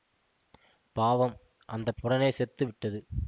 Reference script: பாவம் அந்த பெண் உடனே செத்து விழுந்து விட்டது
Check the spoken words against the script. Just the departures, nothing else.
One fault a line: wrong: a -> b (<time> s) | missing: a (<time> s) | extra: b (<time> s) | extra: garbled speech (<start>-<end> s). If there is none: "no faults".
missing: பெண் (1.9 s)
missing: விழுந்து (2.6 s)